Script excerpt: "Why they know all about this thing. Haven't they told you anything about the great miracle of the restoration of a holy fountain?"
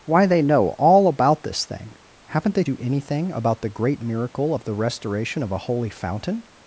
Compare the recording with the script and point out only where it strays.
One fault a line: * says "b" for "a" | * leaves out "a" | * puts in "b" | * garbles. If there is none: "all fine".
* leaves out "told"